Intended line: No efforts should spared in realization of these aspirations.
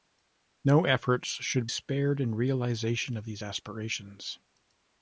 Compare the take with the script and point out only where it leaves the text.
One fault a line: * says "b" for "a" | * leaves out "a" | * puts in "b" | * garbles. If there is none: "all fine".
all fine